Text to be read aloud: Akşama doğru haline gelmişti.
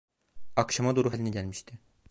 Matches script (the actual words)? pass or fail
pass